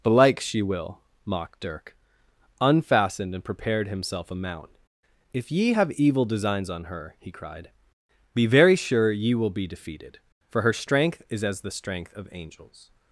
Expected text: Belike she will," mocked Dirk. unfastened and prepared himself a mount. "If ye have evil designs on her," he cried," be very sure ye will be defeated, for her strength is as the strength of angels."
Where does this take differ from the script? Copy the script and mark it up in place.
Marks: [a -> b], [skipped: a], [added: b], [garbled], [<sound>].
Belike she will," mocked Dirk. unfastened and prepared himself a mount. "If ye have evil designs on her," he cried," be very sure ye will be defeated, for her strength is as the strength of angels."